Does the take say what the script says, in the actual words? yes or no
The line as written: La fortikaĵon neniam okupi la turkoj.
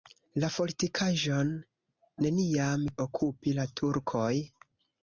yes